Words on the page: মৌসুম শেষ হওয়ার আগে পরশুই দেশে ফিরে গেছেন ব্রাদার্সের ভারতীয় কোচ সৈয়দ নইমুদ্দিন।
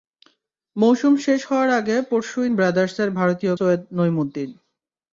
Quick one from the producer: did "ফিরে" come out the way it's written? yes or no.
no